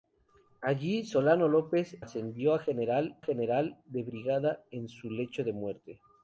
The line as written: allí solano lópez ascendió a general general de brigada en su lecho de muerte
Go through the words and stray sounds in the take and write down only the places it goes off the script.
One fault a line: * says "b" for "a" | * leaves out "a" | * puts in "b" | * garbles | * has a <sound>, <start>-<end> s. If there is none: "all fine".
all fine